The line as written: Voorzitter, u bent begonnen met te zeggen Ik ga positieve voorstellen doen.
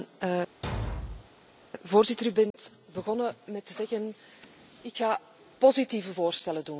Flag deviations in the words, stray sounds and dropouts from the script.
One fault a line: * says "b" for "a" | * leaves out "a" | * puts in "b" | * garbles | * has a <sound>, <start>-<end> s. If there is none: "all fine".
* has a thud, 0.6-1.3 s
* has a dropout, 2.5-2.5 s